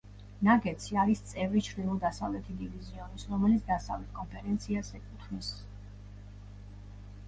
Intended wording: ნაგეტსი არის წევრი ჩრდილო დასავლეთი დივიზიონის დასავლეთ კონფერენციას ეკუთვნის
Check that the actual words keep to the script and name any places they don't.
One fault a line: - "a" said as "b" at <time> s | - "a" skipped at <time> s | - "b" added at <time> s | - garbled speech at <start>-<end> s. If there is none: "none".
- "რომელიც" added at 3.4 s